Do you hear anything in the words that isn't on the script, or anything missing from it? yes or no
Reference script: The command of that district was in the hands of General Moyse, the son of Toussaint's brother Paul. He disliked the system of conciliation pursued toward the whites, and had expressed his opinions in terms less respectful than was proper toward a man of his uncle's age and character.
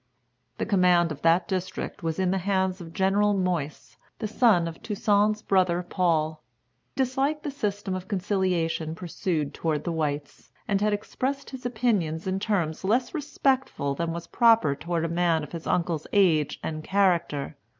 yes